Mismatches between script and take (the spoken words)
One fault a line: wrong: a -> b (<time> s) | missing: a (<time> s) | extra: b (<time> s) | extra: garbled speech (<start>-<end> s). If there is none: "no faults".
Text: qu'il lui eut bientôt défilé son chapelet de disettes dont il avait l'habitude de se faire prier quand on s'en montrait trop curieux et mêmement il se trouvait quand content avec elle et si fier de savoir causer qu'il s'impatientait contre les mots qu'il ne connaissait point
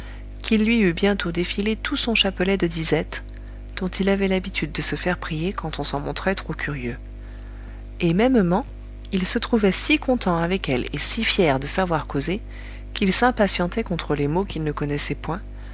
extra: tout (1.8 s)
wrong: quand -> si (9.7 s)